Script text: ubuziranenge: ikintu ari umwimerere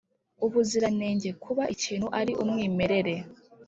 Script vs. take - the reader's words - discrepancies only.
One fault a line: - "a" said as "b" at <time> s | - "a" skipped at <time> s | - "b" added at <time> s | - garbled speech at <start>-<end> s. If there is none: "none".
- "kuba" added at 1.4 s